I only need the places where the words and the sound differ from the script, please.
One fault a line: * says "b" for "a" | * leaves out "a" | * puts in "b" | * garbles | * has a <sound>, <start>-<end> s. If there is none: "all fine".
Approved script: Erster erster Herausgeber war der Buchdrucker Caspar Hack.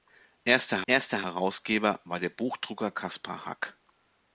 all fine